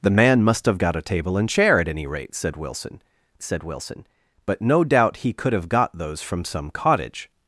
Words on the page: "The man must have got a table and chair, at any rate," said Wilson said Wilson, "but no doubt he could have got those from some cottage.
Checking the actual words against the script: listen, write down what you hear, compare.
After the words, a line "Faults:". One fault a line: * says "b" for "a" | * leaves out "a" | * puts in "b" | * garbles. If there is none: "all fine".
"The man must have got a table and chair, at any rate," said Wilson said Wilson, "but no doubt he could have got those from some cottage.
Faults:
all fine